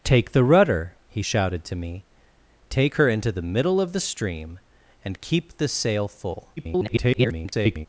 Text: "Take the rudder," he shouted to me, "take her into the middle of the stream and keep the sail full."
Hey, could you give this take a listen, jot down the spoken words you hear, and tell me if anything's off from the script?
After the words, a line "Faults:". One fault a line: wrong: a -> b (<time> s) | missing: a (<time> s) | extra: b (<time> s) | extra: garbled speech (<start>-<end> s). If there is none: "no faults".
"Take the rudder," he shouted to me, "take her into the middle of the stream and keep the sail full." [garbled]
Faults:
extra: garbled speech (6.6-7.9 s)